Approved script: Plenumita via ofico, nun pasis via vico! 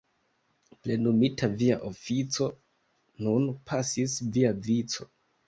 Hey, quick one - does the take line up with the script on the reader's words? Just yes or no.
yes